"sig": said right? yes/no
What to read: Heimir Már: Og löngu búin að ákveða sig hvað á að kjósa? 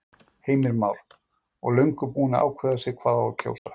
yes